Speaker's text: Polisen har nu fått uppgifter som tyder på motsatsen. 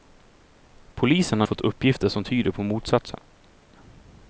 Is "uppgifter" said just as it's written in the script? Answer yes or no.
yes